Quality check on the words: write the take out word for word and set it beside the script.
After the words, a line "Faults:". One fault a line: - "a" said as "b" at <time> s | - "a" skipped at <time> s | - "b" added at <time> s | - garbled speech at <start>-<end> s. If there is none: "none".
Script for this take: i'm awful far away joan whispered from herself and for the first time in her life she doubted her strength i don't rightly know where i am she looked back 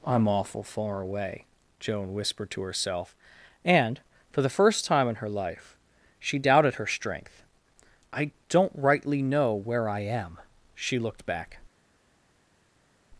i'm awful far away joan whispered to herself and for the first time in her life she doubted her strength i don't rightly know where i am she looked back
Faults:
- "from" said as "to" at 2.5 s